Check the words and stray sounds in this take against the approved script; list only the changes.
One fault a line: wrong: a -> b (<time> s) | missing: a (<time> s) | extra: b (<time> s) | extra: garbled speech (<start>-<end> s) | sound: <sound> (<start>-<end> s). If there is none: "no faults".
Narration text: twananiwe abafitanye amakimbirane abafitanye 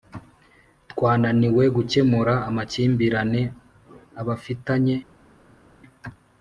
wrong: abafitanye -> gukemura (1.8 s)